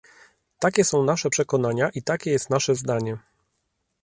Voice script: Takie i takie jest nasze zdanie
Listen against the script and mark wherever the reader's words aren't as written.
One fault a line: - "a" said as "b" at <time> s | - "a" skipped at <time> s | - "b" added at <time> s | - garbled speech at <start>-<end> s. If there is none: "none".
- "są nasze przekonania" added at 0.8 s